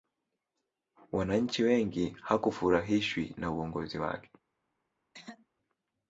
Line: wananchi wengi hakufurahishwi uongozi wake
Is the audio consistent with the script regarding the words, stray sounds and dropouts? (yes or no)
no